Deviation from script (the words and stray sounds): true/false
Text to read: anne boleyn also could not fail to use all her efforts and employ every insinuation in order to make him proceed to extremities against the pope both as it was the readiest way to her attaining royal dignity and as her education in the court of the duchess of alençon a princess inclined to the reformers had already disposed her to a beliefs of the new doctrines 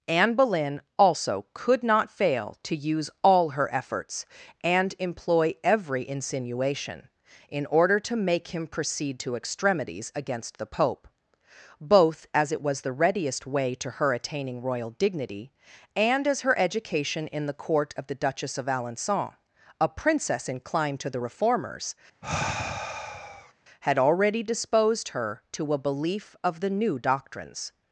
true